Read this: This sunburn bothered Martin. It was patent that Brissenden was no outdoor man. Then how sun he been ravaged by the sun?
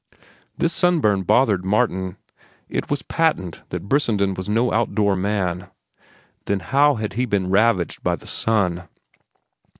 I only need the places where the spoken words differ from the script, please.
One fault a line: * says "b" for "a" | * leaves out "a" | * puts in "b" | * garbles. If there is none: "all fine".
* says "had" for "sun"